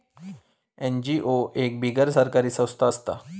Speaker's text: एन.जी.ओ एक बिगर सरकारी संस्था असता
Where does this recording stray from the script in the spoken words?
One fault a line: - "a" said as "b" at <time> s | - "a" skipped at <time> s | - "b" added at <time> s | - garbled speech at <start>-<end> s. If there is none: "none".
none